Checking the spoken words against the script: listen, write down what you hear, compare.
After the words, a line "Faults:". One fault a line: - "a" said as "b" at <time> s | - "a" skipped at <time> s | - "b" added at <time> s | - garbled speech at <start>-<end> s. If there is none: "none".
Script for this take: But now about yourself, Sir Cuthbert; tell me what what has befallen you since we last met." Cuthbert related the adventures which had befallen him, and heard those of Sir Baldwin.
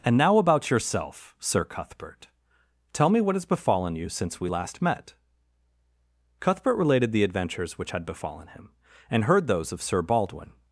And now about yourself, Sir Cuthbert; tell me what has befallen you since we last met." Cuthbert related the adventures which had befallen him, and heard those of Sir Baldwin.
Faults:
- "But" said as "And" at 0.0 s
- "what" skipped at 3.4 s